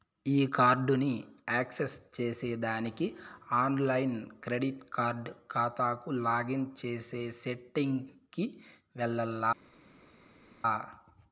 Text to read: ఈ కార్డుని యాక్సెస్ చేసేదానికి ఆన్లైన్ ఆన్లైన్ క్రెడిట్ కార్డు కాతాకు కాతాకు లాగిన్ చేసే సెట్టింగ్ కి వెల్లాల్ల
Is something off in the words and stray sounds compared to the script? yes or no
yes